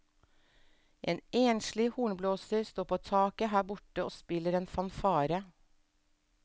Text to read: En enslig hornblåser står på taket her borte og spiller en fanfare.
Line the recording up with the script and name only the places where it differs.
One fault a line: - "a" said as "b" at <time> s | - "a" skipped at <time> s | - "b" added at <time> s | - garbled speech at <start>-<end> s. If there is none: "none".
none